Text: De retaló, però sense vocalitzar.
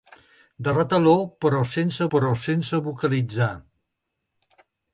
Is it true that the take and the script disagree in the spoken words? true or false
true